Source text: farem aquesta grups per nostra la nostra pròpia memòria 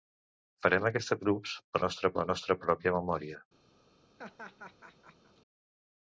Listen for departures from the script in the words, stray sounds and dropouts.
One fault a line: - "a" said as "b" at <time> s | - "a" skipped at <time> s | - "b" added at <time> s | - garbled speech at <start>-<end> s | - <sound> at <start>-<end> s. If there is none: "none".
- laugh at 4.2-5.4 s